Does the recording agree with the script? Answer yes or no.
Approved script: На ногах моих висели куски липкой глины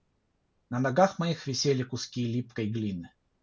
yes